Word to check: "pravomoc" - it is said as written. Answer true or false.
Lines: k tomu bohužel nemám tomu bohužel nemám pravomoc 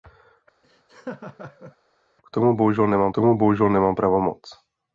true